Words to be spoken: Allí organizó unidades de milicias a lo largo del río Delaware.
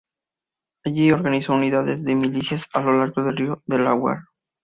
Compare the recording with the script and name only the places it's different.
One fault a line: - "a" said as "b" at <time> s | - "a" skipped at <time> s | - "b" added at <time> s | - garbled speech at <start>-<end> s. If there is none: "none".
none